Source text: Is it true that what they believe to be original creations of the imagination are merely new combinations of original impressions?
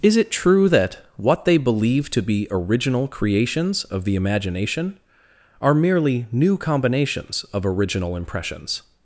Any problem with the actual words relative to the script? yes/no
no